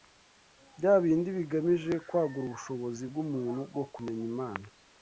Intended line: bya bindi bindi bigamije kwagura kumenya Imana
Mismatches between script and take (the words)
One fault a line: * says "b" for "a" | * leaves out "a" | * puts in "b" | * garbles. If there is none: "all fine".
* leaves out "bindi"
* puts in "ubushobozi bw'umuntu bwo"